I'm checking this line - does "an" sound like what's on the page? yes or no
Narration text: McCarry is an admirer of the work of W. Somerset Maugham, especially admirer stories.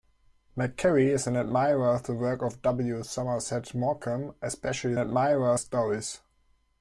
yes